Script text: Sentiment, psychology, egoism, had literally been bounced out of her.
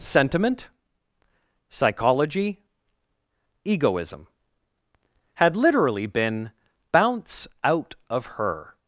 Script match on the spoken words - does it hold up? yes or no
no